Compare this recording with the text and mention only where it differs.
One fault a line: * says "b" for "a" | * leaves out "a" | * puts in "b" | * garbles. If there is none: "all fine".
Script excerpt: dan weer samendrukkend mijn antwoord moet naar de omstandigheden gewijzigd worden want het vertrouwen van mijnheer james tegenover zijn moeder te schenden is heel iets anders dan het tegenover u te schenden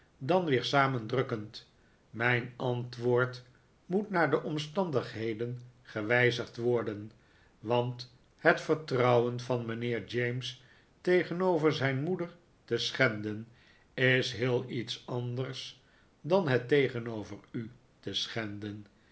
all fine